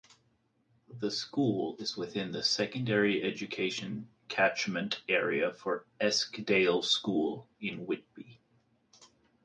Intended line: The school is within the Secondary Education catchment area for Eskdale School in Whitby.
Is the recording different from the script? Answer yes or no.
no